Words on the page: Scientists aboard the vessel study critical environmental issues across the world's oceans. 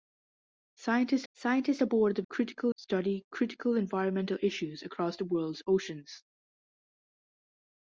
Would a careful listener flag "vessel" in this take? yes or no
yes